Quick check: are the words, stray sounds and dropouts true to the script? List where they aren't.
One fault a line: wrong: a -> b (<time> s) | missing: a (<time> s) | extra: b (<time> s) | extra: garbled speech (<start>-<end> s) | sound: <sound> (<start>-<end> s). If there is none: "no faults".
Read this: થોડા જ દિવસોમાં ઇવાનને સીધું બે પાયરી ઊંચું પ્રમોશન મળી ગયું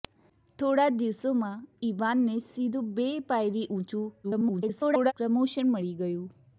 extra: garbled speech (4.2-5.1 s)